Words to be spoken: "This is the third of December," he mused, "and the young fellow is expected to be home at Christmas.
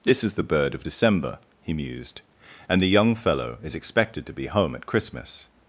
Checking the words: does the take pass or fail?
fail